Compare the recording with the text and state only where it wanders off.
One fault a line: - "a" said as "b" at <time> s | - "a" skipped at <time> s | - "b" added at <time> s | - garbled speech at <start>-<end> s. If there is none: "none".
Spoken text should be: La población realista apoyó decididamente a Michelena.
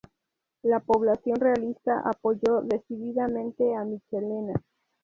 none